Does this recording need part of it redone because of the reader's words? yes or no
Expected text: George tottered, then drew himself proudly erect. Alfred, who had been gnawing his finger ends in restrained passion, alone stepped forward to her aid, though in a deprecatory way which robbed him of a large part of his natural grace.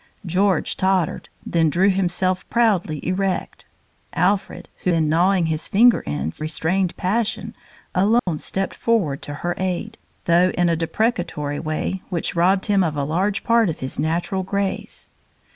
yes